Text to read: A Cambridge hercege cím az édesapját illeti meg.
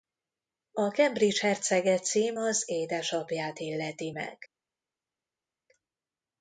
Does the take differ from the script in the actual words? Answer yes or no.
no